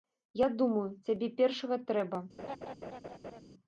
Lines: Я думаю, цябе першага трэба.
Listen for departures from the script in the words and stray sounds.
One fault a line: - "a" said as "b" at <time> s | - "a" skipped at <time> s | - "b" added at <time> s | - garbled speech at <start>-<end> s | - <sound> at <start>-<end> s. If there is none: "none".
- laugh at 2.4-3.4 s